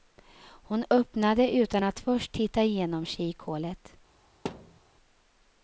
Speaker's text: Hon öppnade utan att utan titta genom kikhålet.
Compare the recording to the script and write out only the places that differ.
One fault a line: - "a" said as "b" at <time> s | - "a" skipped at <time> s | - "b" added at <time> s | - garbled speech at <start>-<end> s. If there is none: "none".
- "utan" said as "först" at 2.0 s